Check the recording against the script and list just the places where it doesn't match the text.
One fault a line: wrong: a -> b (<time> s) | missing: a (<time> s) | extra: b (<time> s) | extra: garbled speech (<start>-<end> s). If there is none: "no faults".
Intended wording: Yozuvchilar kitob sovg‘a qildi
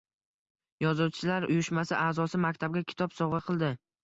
extra: uyushmasi a'zosi maktabga (1.5 s)